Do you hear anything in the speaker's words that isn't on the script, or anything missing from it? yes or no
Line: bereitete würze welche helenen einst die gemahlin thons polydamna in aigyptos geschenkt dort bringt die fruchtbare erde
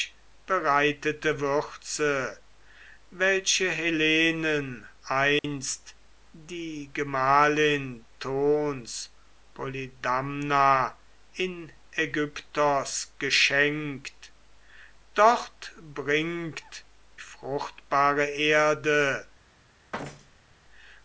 yes